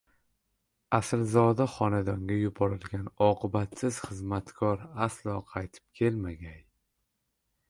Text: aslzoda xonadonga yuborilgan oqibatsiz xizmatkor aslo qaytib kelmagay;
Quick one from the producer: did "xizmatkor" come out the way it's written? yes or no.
yes